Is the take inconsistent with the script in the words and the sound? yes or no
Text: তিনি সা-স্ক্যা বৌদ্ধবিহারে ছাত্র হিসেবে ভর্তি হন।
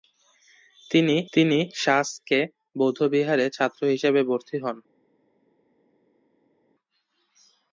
yes